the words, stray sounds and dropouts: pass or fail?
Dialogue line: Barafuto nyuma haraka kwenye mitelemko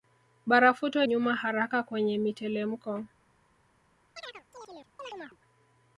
fail